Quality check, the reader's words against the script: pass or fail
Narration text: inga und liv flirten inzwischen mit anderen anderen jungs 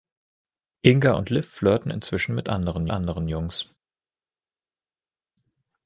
pass